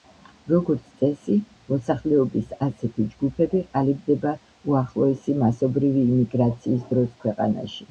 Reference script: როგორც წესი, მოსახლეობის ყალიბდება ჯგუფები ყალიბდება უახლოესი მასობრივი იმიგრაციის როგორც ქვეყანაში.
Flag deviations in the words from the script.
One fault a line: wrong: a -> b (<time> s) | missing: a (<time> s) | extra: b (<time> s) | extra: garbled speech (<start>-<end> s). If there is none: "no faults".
wrong: ყალიბდება -> ასეთი (2.7 s)
wrong: როგორც -> დროს (6.9 s)